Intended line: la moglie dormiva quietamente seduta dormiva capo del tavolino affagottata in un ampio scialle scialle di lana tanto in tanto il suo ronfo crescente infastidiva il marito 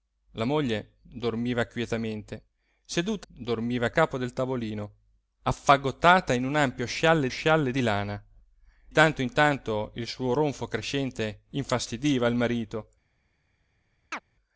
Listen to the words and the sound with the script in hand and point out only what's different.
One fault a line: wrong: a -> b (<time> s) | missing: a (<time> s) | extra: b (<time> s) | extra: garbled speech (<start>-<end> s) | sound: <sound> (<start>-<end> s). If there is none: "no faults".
sound: chirp (14.1-14.2 s)